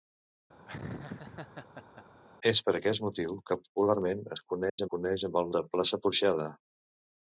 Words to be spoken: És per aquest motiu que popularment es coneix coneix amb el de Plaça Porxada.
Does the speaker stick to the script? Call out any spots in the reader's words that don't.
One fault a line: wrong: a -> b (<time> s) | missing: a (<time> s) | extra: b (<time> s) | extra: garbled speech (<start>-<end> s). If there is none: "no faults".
no faults